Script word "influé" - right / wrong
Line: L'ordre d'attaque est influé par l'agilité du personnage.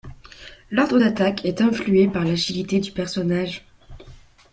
right